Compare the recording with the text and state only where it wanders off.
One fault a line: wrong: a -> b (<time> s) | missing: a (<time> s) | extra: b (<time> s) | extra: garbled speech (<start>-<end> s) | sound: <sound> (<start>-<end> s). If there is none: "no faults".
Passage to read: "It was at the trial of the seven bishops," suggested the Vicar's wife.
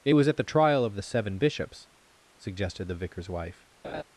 sound: laugh (3.8-4.0 s)